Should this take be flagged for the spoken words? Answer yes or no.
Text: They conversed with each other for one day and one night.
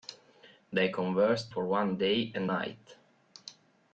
yes